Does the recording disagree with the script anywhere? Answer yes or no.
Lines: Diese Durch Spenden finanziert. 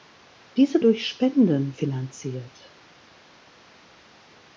no